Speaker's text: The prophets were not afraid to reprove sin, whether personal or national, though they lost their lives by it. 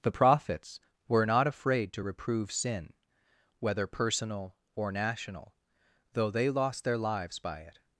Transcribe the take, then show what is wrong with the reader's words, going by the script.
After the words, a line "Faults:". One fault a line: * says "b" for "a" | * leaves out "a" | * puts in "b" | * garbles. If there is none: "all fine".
The prophets were not afraid to reprove sin, whether personal or national, though they lost their lives by it.
Faults:
all fine